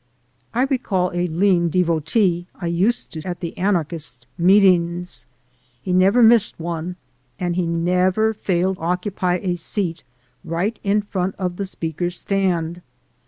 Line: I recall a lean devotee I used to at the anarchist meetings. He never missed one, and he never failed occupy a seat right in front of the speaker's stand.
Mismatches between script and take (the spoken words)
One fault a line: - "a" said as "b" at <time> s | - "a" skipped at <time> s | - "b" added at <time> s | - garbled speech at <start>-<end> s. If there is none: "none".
none